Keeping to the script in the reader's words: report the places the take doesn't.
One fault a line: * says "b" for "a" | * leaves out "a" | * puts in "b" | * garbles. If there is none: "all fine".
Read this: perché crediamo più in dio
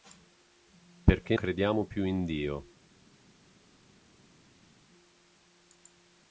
all fine